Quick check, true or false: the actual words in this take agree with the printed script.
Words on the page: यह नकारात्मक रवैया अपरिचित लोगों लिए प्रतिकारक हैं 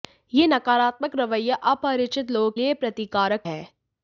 true